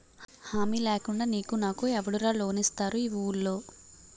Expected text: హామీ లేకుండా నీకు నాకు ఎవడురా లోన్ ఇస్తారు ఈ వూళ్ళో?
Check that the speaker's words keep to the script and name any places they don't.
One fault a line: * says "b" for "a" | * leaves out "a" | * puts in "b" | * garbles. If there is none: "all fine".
all fine